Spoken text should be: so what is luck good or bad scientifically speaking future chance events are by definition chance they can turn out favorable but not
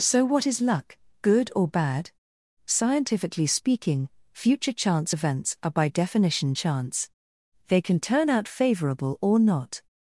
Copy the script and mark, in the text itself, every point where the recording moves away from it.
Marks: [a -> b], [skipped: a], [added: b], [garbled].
so what is luck good or bad scientifically speaking future chance events are by definition chance they can turn out favorable [but -> or] not